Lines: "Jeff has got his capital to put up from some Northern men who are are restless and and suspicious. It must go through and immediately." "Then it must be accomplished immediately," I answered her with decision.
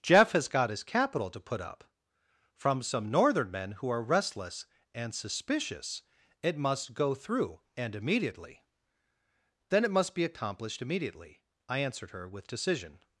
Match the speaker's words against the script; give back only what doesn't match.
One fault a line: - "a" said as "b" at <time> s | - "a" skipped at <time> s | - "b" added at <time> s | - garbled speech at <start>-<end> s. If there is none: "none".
- "are" skipped at 4.0 s
- "and" skipped at 5.1 s